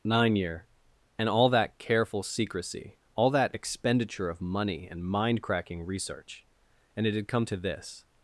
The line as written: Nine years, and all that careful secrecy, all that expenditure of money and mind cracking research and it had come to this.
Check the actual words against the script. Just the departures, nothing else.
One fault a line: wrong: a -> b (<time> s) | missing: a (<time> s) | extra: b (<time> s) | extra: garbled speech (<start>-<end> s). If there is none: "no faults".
wrong: years -> year (0.3 s)